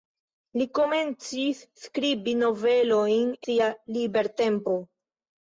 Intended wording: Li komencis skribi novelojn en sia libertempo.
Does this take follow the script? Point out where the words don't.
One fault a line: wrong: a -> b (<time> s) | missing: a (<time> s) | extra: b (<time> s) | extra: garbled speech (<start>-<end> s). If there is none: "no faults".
missing: en (3.3 s)